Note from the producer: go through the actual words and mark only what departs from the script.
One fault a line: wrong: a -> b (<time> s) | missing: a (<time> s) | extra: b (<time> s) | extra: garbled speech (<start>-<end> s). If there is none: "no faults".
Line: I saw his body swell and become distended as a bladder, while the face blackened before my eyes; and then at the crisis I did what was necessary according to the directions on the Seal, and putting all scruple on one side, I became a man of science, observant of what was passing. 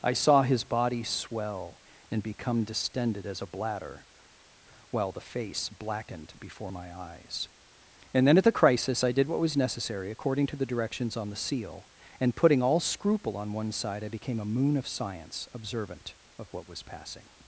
wrong: man -> moon (14.4 s)